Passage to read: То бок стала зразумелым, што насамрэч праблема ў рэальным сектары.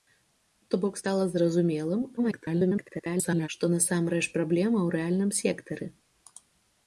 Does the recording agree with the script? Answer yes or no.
no